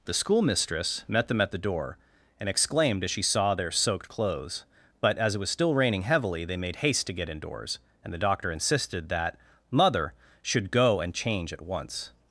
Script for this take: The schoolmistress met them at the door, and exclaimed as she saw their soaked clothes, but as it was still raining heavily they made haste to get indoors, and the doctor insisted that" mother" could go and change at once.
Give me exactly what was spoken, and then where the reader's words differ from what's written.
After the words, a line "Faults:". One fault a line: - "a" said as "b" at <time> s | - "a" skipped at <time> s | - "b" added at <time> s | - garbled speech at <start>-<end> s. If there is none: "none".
The schoolmistress met them at the door, and exclaimed as she saw their soaked clothes, but as it was still raining heavily they made haste to get indoors, and the doctor insisted that" mother" should go and change at once.
Faults:
- "could" said as "should" at 10.4 s